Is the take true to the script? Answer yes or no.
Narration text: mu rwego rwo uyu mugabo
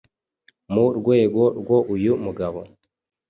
yes